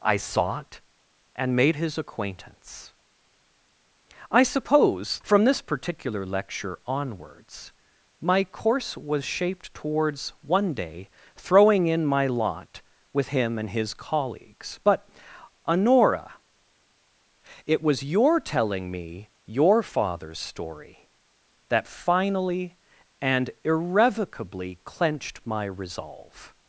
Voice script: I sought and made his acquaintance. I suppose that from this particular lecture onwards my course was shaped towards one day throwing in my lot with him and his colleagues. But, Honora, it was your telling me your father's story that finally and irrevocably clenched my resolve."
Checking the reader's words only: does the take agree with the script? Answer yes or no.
no